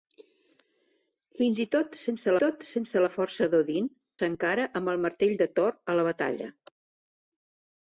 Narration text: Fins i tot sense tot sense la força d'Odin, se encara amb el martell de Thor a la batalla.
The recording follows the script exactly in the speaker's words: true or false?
true